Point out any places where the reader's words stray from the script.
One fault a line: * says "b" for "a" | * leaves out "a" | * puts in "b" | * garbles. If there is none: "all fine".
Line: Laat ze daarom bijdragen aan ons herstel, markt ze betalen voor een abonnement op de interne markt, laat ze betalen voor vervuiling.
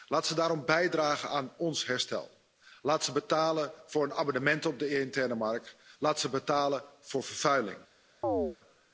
* says "laat" for "markt"